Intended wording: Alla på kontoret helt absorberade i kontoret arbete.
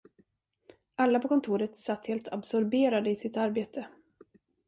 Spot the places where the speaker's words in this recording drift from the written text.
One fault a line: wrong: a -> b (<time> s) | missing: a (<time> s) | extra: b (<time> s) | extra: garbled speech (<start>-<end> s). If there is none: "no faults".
extra: satt (1.8 s)
wrong: kontoret -> sitt (3.1 s)